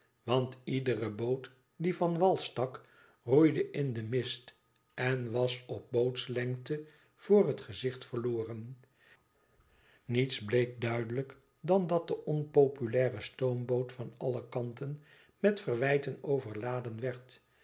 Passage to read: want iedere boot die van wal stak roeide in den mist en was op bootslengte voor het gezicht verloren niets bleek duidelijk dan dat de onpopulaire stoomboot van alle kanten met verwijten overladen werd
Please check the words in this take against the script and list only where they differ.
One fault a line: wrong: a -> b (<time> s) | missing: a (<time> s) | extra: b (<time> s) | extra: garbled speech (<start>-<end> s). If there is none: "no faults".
no faults